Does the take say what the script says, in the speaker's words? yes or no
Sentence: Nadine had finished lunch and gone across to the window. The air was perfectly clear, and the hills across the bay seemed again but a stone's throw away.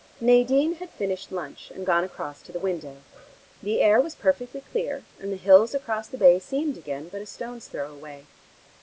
yes